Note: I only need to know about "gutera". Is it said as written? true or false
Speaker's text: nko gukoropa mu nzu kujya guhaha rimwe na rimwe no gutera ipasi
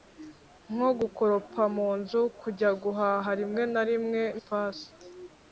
false